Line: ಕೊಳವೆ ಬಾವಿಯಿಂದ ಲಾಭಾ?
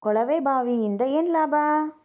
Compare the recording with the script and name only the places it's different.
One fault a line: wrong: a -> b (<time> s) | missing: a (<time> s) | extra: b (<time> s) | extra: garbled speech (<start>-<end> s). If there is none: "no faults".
extra: ಏನ್ (1.2 s)